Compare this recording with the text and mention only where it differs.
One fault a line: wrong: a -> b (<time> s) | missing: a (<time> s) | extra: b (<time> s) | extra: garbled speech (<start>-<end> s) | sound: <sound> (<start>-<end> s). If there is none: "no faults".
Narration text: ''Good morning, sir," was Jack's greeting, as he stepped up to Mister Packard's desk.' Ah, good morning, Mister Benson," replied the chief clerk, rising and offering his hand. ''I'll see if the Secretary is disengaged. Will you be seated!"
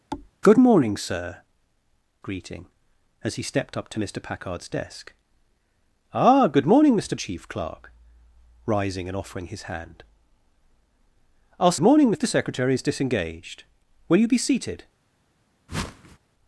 sound: thud (0.1-0.3 s)
missing: was Jack's (1.4 s)
missing: Benson replied the (7.2 s)
wrong: see -> morning (11.8 s)
sound: whoosh (15.7-16.2 s)